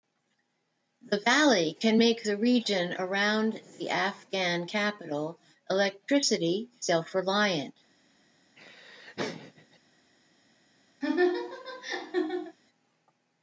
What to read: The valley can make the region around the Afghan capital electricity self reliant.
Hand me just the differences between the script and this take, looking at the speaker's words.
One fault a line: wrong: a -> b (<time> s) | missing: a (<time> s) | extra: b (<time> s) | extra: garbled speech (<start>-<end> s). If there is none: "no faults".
no faults